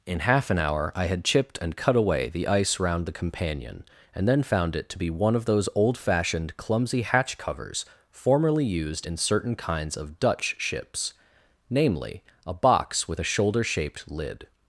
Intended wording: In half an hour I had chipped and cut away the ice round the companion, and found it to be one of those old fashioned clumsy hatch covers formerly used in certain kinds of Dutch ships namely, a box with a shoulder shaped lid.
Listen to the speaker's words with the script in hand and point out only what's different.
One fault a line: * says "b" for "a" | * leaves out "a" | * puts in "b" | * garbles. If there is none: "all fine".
* puts in "then"